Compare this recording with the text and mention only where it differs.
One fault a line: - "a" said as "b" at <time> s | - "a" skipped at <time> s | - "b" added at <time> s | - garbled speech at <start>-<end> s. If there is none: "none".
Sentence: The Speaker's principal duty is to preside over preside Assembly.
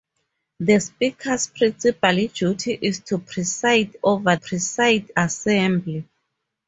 none